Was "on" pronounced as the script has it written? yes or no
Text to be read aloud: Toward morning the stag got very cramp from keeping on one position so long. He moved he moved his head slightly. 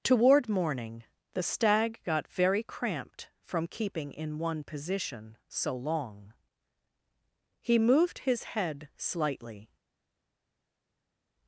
no